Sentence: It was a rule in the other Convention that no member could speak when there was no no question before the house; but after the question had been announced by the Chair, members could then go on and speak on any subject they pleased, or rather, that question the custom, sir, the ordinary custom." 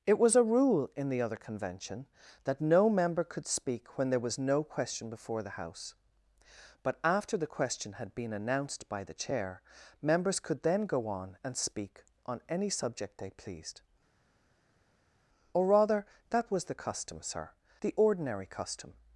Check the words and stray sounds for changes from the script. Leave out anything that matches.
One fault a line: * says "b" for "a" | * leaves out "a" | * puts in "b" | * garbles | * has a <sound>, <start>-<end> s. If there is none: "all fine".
* leaves out "no"
* says "was" for "question"